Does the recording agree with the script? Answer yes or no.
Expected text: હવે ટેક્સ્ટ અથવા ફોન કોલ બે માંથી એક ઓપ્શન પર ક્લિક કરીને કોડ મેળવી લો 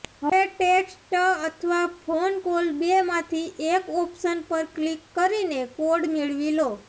yes